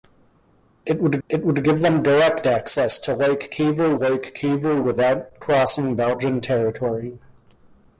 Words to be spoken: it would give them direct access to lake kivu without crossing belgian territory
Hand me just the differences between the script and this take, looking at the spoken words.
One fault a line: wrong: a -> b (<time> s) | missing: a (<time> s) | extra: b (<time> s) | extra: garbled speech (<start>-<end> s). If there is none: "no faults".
extra: it would (1.3 s)
extra: lake kivu (4.0 s)